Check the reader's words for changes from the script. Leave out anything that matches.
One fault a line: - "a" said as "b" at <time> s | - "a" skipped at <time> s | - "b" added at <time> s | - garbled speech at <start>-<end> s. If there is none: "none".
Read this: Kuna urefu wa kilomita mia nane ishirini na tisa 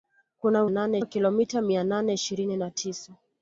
- "urefu" said as "nane" at 0.7 s